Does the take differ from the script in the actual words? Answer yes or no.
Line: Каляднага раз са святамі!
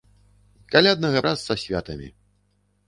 no